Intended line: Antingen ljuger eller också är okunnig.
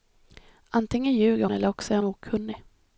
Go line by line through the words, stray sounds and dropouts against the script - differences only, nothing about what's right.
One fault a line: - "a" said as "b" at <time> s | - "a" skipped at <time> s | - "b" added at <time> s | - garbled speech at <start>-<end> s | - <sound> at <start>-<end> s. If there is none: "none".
none